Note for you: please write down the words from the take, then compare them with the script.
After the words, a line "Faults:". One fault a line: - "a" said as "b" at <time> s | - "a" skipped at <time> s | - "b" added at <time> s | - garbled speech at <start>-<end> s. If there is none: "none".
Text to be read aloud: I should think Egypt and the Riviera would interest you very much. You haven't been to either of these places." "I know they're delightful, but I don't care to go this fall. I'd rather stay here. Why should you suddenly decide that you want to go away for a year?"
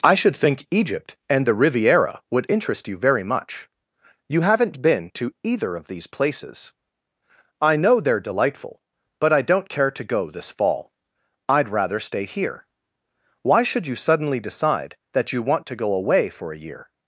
I should think Egypt and the Riviera would interest you very much. You haven't been to either of these places." "I know they're delightful, but I don't care to go this fall. I'd rather stay here. Why should you suddenly decide that you want to go away for a year?"
Faults:
none